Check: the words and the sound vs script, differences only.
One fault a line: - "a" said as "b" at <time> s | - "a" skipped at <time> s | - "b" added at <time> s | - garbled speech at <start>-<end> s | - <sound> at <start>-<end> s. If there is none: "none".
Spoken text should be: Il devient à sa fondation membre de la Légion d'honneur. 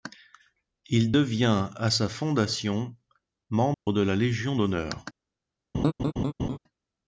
- dropout at 3.7-3.9 s
- laugh at 5.7-6.6 s